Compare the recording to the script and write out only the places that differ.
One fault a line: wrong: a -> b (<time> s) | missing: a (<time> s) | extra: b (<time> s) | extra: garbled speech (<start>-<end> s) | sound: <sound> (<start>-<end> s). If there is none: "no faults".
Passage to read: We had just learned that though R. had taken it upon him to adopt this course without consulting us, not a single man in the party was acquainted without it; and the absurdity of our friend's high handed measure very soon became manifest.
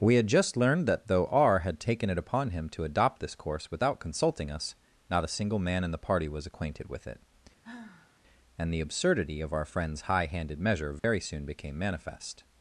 wrong: without -> with (6.9 s)
sound: sigh (7.6-8.2 s)
sound: dropout (11.0-11.0 s)